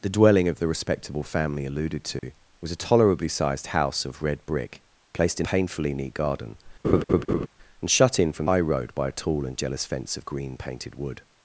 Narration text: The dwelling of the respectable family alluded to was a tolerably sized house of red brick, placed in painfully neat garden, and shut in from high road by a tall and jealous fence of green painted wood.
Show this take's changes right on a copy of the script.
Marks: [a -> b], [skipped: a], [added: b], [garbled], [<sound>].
The dwelling of the respectable family alluded to [dropout] was a tolerably sized house of red brick, placed in painfully neat garden, [laugh] and shut in from high road by a tall and jealous fence of green painted wood.